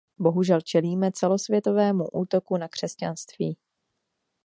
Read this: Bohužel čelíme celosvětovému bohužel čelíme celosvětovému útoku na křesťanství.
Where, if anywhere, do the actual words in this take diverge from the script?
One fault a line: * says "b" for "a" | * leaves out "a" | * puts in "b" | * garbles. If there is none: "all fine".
* leaves out "bohužel čelíme celosvětovému"